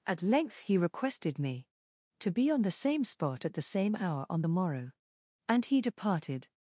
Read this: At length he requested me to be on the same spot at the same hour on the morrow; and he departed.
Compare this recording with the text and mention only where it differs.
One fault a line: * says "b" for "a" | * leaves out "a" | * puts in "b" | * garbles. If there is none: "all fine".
all fine